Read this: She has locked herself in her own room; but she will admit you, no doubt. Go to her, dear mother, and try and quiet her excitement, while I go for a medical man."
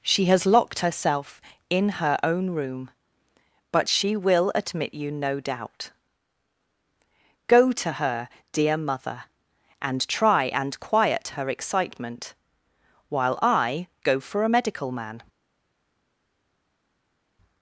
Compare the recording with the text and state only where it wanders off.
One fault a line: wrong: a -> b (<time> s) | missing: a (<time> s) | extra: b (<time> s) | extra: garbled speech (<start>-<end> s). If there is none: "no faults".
no faults